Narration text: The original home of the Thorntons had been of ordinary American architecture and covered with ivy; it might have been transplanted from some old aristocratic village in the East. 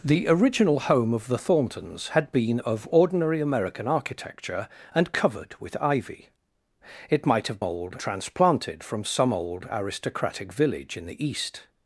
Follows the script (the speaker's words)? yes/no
no